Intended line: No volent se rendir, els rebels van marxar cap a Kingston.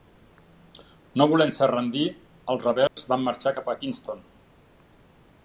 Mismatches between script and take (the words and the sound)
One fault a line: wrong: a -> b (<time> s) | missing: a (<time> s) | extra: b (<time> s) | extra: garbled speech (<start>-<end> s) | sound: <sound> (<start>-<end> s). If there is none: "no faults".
sound: dropout (2.9-3.0 s)